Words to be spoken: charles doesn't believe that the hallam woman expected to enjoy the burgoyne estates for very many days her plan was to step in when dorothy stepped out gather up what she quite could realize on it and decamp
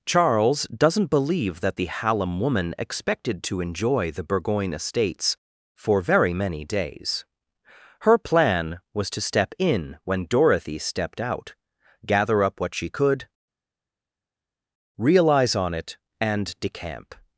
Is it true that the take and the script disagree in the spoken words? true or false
true